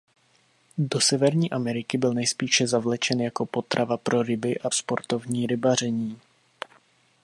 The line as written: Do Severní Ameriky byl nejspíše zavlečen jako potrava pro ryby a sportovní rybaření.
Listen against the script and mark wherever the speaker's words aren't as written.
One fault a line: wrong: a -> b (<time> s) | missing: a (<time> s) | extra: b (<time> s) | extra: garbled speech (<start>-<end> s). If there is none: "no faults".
no faults